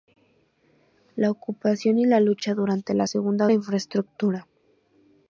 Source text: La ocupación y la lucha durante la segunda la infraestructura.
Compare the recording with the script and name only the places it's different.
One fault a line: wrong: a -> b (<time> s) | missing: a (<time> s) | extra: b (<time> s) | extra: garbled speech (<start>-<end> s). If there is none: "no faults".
no faults